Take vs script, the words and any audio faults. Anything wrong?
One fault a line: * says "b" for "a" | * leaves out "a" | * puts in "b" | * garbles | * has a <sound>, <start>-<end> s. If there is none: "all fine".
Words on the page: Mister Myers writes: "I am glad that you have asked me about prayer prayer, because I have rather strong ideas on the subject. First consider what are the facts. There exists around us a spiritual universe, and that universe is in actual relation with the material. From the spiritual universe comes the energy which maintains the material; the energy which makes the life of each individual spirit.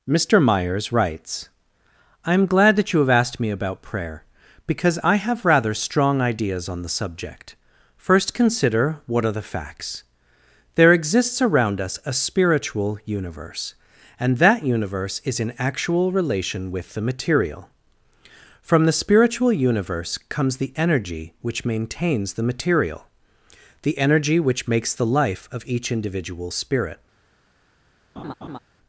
* leaves out "prayer"
* has a laugh, 28.2-28.6 s